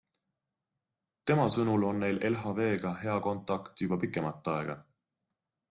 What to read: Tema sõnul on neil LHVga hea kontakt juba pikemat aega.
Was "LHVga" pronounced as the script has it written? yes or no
yes